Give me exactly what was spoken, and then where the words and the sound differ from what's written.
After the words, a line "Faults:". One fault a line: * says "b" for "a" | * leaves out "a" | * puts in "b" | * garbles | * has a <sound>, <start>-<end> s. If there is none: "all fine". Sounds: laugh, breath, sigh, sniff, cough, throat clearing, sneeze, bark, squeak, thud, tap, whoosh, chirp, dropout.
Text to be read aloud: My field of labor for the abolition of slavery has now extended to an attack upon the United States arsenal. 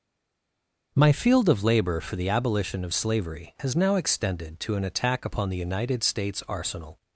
My field of labor for the abolition of slavery has now extended to an attack upon the United States arsenal.
Faults:
all fine